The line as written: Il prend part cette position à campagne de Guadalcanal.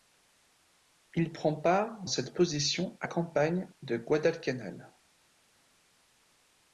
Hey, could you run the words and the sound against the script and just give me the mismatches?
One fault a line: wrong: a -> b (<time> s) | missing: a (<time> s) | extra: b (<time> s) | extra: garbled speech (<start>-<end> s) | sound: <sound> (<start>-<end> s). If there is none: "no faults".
no faults